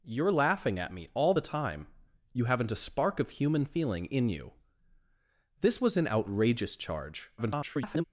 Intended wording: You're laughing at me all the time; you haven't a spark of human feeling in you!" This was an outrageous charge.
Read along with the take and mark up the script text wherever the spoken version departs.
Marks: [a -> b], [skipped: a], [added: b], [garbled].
You're laughing at me all the time; you haven't a spark of human feeling in you!" This was an outrageous charge. [garbled]